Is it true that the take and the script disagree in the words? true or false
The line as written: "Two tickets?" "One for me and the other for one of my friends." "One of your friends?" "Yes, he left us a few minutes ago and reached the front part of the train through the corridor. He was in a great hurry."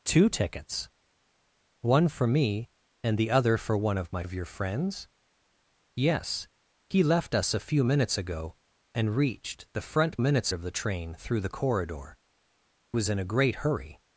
true